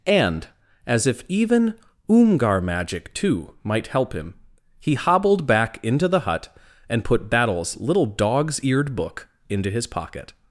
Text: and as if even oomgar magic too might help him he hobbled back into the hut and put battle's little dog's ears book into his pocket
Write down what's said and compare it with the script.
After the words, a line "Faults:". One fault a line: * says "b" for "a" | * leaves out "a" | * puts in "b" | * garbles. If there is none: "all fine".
and as if even oomgar magic too might help him he hobbled back into the hut and put battle's little dog's eared book into his pocket
Faults:
* says "eared" for "ears"